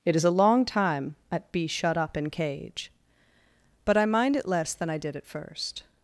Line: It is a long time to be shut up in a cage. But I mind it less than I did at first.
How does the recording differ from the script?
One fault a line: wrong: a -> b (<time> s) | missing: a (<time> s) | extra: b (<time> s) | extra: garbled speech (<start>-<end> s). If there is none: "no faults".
wrong: to -> at (1.3 s)
missing: a (2.3 s)